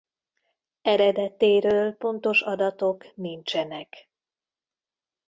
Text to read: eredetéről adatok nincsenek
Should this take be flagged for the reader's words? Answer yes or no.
yes